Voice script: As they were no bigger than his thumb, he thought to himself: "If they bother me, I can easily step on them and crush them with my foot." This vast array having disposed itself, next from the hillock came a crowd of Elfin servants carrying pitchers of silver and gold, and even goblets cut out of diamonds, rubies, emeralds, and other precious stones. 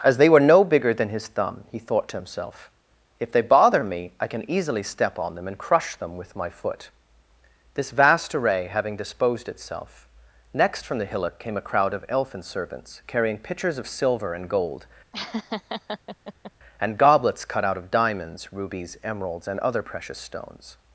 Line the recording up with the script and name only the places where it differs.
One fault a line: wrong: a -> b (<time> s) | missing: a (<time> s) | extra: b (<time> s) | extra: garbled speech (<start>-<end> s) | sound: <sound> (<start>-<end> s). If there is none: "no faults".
sound: laugh (15.1-16.5 s)
missing: even (17.0 s)